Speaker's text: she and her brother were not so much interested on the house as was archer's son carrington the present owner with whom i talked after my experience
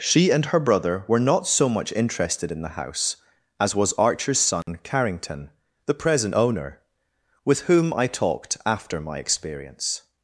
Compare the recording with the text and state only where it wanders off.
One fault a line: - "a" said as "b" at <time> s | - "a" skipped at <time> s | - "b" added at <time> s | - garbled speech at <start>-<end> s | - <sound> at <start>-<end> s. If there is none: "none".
- "on" said as "in" at 2.5 s
- dropout at 4.6-4.7 s